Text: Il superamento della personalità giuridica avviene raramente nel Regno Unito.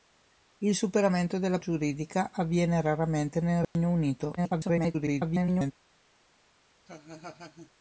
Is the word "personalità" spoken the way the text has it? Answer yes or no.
no